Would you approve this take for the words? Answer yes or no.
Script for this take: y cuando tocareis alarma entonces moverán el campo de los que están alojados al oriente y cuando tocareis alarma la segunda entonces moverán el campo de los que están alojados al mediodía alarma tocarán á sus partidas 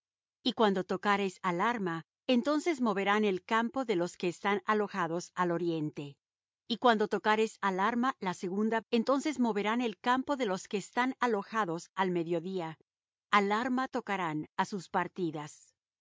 yes